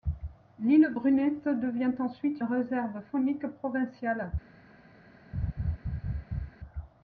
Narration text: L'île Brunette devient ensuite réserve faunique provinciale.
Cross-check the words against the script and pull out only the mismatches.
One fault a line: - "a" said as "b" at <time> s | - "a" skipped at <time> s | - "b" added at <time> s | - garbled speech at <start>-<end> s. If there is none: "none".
none